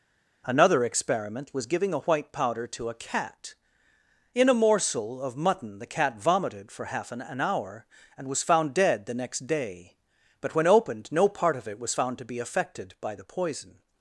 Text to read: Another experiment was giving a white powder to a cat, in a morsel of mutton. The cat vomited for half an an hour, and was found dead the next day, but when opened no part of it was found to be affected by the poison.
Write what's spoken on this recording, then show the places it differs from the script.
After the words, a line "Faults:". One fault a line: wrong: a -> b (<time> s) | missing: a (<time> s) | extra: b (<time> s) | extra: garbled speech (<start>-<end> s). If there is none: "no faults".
Another experiment was giving a white powder to a cat, in a morsel of mutton. The cat vomited for half an an hour, and was found dead the next day, but when opened no part of it was found to be affected by the poison.
Faults:
no faults